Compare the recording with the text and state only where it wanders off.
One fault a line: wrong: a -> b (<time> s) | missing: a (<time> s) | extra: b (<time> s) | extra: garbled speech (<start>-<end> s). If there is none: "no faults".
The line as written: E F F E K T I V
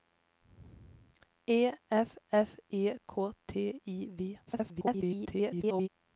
extra: garbled speech (4.5-5.9 s)